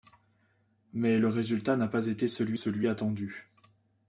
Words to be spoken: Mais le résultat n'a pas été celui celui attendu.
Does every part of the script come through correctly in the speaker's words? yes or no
yes